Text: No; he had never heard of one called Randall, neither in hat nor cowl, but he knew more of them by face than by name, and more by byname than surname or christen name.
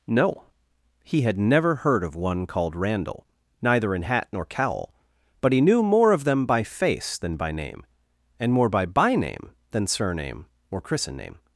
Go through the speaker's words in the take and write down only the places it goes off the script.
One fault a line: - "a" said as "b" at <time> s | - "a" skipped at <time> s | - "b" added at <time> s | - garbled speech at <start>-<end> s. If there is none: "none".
none